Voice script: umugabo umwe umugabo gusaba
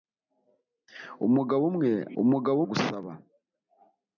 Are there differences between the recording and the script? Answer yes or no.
no